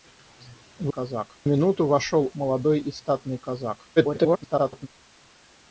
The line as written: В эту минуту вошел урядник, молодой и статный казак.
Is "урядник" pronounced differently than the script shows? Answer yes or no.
yes